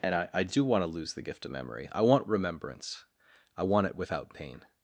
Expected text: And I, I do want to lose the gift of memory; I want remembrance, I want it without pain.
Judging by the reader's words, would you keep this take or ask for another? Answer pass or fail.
pass